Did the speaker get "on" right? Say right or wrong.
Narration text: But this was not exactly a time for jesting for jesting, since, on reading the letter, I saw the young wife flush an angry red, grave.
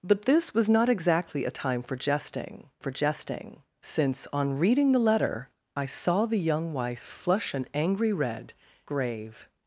right